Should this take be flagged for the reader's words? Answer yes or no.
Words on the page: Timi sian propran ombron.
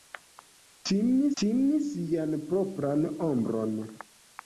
yes